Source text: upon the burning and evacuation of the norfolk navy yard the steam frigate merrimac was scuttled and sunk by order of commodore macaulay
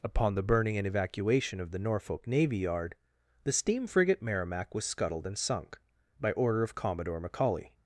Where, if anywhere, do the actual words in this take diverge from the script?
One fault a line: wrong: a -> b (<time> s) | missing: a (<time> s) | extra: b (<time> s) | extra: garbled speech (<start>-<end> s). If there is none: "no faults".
no faults